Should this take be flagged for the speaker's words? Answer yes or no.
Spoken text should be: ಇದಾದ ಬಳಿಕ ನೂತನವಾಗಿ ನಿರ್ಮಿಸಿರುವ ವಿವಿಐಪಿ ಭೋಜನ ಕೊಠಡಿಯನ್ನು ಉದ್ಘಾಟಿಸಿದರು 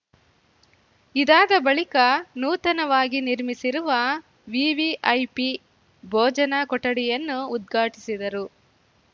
no